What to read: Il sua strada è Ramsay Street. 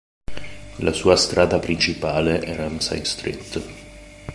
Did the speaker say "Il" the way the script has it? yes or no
no